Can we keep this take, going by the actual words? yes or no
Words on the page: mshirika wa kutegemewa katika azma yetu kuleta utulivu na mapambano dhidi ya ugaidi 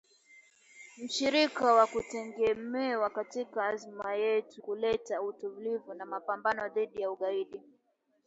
yes